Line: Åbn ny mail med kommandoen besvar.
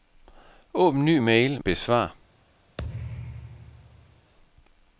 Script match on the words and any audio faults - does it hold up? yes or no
no